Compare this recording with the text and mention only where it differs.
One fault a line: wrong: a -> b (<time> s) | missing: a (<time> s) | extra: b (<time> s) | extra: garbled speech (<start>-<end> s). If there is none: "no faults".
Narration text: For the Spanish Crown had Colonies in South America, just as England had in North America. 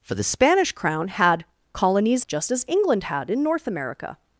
missing: in South America (2.2 s)